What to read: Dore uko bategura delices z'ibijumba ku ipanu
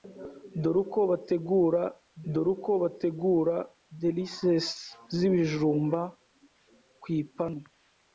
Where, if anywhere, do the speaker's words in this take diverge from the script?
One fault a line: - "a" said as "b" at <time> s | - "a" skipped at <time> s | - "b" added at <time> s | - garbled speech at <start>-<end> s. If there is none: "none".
- "dore uko bategura" added at 2.3 s